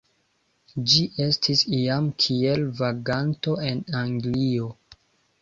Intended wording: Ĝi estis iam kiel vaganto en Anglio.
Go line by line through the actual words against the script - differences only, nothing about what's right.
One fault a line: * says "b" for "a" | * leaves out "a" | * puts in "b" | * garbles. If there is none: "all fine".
all fine